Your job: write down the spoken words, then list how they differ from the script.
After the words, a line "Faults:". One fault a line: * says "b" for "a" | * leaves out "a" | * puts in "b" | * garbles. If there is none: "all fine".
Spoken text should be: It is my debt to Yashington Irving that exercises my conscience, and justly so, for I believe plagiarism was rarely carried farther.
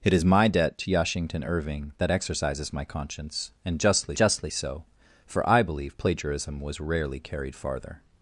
It is my debt to Yashington Irving that exercises my conscience, and justly justly so, for I believe plagiarism was rarely carried farther.
Faults:
* puts in "justly"